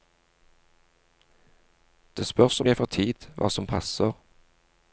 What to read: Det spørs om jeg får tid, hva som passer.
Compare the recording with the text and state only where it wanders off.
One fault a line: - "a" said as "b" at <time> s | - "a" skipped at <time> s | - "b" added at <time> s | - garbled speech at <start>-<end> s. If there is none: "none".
none